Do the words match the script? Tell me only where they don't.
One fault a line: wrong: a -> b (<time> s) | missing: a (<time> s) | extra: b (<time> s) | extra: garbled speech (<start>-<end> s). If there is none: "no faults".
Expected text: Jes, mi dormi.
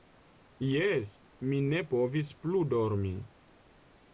extra: ne povis plu (1.7 s)